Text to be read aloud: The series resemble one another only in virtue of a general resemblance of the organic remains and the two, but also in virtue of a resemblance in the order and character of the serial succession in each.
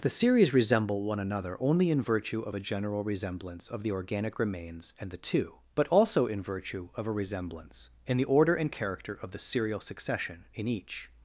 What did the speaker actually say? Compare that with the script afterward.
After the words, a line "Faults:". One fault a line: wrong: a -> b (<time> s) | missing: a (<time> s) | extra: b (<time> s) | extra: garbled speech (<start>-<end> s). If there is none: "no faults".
The series resemble one another only in virtue of a general resemblance of the organic remains and the two, but also in virtue of a resemblance in the order and character of the serial succession in each.
Faults:
no faults